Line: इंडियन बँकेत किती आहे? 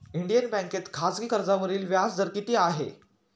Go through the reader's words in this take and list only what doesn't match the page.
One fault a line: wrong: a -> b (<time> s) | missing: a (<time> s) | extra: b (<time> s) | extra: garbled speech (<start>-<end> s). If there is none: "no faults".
extra: खाजगी कर्जावरील व्याजदर (0.9 s)